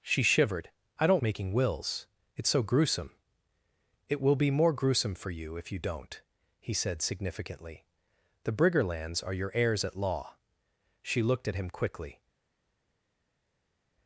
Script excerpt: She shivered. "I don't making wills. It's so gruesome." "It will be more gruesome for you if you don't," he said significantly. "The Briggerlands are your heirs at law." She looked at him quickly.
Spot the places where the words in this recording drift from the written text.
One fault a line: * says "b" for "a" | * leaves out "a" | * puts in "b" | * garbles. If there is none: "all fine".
all fine